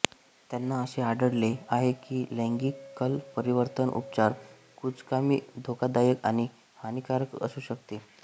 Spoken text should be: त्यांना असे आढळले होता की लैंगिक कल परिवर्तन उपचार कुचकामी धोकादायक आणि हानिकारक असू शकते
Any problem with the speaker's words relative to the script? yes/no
yes